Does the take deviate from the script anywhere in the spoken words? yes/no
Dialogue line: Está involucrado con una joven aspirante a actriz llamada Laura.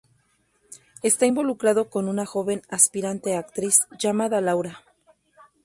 no